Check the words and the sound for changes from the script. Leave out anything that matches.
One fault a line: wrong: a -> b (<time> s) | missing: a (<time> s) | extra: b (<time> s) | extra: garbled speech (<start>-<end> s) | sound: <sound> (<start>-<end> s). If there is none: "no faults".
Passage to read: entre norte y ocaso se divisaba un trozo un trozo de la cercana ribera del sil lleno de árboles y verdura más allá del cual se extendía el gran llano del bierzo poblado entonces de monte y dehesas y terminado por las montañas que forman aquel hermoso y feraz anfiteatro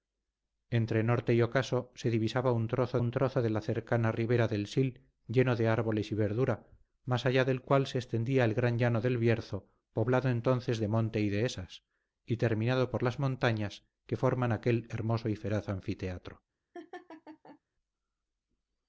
sound: laugh (16.7-17.6 s)